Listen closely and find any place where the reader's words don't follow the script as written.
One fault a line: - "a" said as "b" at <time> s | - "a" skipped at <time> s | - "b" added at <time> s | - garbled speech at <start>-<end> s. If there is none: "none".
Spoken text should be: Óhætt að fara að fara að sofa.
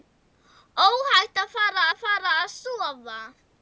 none